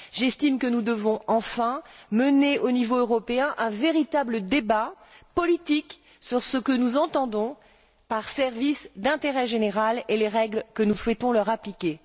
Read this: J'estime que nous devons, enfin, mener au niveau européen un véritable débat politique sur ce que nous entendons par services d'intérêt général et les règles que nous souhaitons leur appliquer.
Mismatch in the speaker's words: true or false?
false